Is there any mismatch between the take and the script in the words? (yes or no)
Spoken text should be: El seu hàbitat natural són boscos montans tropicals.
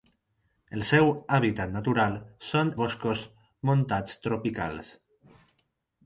no